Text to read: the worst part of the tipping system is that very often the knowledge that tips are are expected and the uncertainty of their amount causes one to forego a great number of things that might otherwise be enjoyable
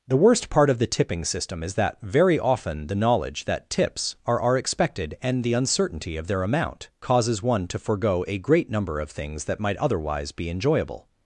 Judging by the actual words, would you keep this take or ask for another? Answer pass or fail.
pass